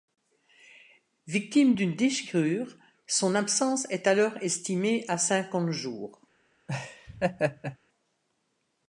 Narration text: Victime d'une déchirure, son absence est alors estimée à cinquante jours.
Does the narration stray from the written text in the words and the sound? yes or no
yes